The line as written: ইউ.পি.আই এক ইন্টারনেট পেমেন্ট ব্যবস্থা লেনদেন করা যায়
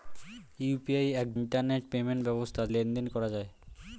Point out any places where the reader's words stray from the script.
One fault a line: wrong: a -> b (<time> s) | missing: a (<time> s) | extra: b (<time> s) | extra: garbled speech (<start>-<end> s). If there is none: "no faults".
no faults